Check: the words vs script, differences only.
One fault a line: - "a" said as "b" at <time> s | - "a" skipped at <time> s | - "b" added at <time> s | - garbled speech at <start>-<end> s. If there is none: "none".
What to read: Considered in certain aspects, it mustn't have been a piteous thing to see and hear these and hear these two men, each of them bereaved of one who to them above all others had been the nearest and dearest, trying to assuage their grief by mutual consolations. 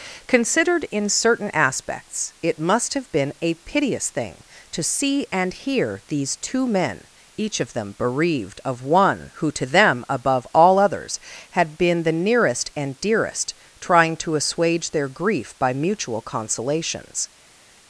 - "mustn't" said as "must" at 2.6 s
- "and hear these" skipped at 6.4 s